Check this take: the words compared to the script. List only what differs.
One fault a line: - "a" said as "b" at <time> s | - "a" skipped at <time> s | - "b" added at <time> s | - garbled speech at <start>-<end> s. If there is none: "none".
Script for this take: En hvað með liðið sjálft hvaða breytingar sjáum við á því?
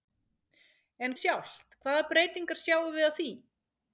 - "hvað með liðið" skipped at 1.1 s